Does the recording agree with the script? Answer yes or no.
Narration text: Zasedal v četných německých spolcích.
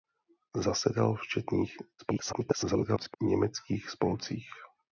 no